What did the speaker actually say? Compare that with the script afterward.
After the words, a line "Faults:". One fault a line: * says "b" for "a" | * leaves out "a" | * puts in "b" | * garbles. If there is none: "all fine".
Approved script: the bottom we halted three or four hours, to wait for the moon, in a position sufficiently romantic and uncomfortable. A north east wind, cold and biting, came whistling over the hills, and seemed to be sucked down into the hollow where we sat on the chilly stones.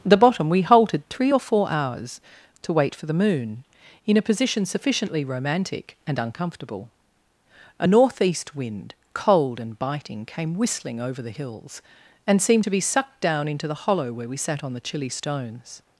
the bottom we halted three or four hours, to wait for the moon, in a position sufficiently romantic and uncomfortable. A north east wind, cold and biting, came whistling over the hills, and seemed to be sucked down into the hollow where we sat on the chilly stones.
Faults:
all fine